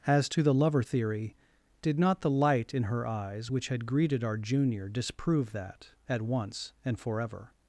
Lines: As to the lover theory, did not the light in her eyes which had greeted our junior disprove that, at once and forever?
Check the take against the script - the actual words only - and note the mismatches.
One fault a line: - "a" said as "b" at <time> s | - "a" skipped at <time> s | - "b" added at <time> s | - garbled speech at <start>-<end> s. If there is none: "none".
none